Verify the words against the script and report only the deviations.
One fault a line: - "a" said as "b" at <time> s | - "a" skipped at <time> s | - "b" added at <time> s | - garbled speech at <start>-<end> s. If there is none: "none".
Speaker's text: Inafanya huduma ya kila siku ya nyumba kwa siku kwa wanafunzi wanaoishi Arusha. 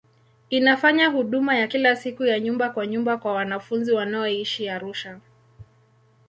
- "siku" said as "nyumba" at 2.9 s